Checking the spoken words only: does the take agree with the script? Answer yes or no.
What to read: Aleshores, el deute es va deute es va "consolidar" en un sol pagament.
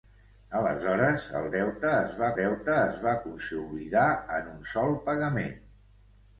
yes